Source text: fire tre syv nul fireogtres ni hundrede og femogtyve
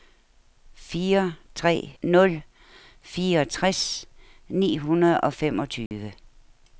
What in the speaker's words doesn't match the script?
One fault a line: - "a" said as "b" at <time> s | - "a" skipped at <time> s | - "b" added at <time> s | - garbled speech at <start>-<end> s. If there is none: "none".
- "syv" skipped at 1.9 s